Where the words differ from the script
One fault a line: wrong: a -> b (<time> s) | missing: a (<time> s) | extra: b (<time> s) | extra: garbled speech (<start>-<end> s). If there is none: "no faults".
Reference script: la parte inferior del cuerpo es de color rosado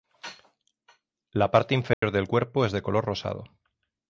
no faults